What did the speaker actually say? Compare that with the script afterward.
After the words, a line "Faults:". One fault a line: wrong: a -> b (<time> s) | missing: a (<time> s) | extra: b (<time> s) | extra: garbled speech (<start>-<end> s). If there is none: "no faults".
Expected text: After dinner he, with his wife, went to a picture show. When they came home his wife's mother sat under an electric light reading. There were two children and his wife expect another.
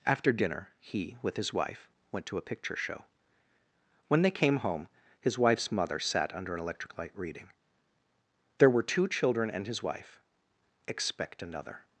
After dinner he, with his wife, went to a picture show. When they came home his wife's mother sat under an electric light reading. There were two children and his wife expect another.
Faults:
no faults